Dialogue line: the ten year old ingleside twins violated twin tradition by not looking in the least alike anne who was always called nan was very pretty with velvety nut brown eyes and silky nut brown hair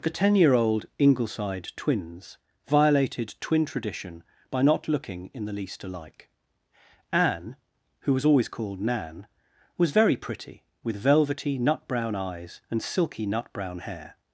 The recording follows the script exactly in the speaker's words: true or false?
true